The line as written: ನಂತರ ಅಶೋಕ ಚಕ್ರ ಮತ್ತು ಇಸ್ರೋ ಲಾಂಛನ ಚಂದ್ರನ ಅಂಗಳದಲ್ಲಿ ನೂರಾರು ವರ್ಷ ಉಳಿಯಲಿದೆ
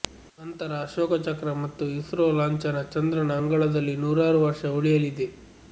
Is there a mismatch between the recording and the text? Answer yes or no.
no